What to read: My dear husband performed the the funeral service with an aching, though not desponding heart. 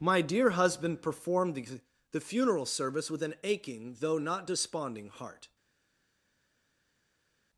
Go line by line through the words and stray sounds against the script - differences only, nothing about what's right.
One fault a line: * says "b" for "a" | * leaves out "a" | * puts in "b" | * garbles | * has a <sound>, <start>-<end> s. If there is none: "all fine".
all fine